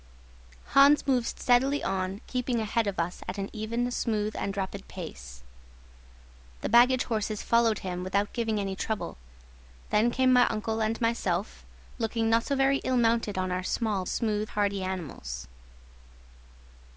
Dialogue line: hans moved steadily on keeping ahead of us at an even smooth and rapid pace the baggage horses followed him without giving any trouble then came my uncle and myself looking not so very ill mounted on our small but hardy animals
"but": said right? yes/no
no